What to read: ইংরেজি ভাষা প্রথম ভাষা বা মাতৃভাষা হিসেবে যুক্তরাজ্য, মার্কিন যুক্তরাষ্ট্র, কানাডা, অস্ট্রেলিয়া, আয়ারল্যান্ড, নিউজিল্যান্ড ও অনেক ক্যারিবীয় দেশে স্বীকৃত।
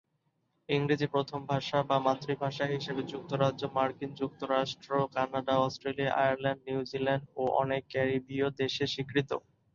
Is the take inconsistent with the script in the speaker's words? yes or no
yes